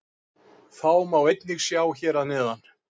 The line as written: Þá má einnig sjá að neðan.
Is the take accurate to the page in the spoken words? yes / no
no